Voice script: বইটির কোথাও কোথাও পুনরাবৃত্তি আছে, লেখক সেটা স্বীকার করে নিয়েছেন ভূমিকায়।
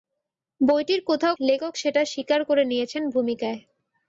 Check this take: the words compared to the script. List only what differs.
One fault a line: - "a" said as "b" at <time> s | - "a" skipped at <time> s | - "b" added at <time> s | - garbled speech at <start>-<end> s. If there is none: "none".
- "কোথাও পুনরাবৃত্তি আছে" skipped at 1.3 s